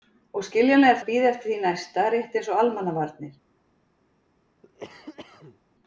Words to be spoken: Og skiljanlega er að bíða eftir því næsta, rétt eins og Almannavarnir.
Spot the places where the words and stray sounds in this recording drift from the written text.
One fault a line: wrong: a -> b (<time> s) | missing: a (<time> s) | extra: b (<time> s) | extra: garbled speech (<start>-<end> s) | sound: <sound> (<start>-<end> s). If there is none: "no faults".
sound: cough (4.6-5.6 s)